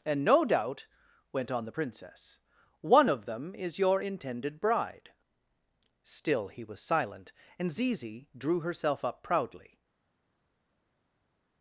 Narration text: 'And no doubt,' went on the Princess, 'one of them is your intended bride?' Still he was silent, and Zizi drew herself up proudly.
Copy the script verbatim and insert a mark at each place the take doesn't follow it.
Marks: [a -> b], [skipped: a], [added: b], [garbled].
'And no doubt,' went on the Princess, 'one of them is your intended bride?' Still he was silent, and Zizi drew herself up proudly.